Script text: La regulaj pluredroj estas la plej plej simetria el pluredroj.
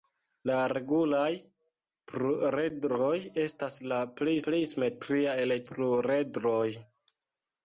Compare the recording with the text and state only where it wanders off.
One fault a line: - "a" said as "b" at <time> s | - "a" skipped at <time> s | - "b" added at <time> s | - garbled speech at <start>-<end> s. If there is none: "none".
none